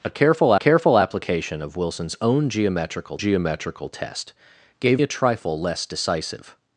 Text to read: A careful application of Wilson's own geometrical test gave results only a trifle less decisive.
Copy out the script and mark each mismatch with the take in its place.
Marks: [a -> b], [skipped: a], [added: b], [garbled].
A careful [added: careful] application of Wilson's own geometrical [added: geometrical] test gave [skipped: results only] a trifle less decisive.